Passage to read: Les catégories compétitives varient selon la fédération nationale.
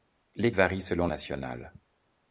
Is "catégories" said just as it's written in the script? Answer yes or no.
no